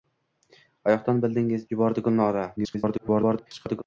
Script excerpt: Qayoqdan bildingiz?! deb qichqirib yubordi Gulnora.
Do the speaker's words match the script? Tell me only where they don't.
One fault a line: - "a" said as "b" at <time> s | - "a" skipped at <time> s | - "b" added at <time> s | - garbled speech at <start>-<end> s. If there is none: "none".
- "deb qichqirib" skipped at 1.7 s
- garbled speech at 2.6-3.8 s